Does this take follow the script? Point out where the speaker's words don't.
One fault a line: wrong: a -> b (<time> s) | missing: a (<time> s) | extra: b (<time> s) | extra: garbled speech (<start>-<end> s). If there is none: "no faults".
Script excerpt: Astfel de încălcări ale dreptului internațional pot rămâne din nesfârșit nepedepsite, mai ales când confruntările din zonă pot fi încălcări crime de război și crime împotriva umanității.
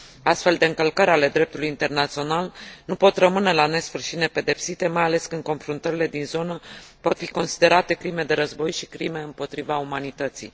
extra: nu (2.9 s)
wrong: din -> la (3.5 s)
wrong: încălcări -> considerate (7.3 s)